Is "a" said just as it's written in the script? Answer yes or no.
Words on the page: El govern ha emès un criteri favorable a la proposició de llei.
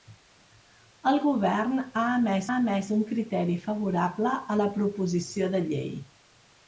yes